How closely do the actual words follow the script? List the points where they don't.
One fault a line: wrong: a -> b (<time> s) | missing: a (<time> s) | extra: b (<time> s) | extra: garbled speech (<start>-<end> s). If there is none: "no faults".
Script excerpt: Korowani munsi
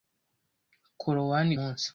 no faults